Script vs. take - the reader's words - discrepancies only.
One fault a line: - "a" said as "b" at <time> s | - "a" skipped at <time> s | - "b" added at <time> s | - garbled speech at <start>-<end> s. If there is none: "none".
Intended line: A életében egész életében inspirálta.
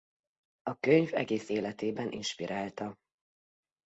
- "életében" said as "könyv" at 0.8 s